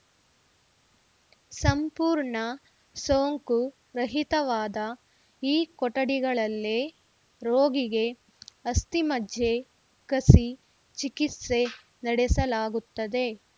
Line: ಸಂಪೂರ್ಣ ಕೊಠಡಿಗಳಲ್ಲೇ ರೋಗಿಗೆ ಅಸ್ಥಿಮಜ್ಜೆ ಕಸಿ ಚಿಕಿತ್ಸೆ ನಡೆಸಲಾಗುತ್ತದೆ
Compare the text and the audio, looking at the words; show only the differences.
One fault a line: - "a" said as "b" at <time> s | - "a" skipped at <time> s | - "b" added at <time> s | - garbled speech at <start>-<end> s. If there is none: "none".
- "ಸೋಂಕು ರಹಿತವಾದ ಈ" added at 3.0 s